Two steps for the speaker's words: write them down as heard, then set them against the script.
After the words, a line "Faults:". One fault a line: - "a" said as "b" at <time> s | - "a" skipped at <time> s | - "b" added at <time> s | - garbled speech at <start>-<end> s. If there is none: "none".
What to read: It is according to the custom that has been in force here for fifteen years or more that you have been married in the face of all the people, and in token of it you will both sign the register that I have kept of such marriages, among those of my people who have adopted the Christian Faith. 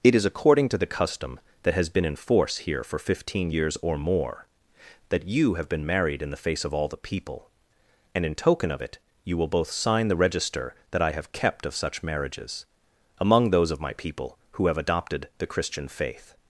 It is according to the custom that has been in force here for fifteen years or more that you have been married in the face of all the people, and in token of it you will both sign the register that I have kept of such marriages, among those of my people who have adopted the Christian Faith.
Faults:
none